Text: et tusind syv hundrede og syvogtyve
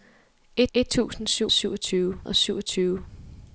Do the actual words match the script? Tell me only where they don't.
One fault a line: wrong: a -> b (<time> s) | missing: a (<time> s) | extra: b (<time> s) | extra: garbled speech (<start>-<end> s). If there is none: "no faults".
extra: et (0.7 s)
wrong: hundrede -> syvogtyve (1.5 s)